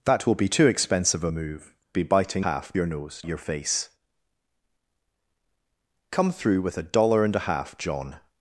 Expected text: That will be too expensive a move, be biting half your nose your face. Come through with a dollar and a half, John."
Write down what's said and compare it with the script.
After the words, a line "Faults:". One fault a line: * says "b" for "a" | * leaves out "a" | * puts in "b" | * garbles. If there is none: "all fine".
That will be too expensive a move, be biting half your nose your face. Come through with a dollar and a half, John."
Faults:
all fine